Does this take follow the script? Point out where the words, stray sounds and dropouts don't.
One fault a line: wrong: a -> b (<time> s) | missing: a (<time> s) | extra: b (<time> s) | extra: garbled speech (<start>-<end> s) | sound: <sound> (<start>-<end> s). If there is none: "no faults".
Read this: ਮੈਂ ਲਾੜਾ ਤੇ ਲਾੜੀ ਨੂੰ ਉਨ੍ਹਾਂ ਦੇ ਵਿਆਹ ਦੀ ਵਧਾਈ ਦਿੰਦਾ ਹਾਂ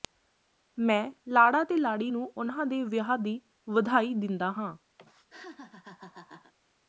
sound: laugh (5.0-6.5 s)